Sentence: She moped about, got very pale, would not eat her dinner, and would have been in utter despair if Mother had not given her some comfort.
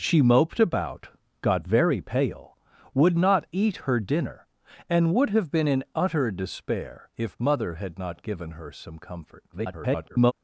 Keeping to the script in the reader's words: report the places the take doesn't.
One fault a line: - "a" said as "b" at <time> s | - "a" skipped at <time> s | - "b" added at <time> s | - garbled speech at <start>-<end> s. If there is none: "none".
- garbled speech at 9.5-10.3 s